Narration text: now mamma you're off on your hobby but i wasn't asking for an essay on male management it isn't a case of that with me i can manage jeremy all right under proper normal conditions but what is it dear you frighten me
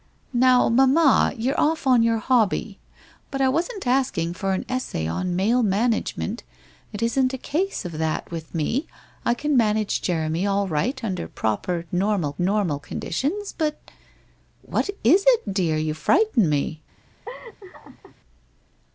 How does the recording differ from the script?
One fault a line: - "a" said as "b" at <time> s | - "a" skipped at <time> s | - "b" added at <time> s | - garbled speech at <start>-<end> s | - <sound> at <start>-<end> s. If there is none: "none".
- "normal" added at 12.4 s
- laugh at 17.3-18.2 s